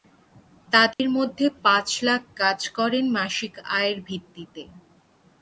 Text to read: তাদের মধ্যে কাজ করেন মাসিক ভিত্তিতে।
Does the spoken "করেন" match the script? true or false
true